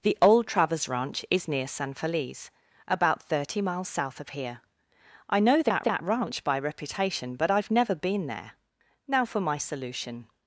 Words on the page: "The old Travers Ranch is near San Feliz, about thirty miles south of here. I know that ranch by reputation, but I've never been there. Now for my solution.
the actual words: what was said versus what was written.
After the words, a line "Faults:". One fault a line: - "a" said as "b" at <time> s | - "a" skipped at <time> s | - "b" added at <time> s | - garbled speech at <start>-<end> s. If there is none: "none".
"The old Travers Ranch is near San Feliz, about thirty miles south of here. I know that that ranch by reputation, but I've never been there. Now for my solution.
Faults:
- "that" added at 5.8 s